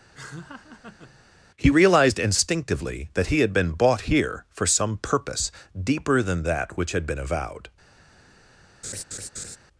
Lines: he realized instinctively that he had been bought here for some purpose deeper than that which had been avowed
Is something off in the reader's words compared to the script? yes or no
no